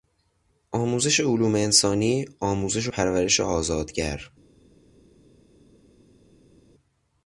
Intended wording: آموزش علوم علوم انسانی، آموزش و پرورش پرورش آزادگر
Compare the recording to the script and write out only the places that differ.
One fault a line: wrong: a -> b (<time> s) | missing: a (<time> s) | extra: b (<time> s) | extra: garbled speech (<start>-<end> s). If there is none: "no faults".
missing: علوم (1.6 s)
missing: پرورش (3.4 s)